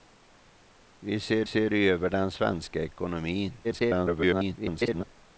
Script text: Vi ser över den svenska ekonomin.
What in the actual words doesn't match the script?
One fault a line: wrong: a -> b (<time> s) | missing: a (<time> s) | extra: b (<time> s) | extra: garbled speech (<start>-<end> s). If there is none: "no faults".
extra: ser (1.4 s)
extra: garbled speech (3.6-5.0 s)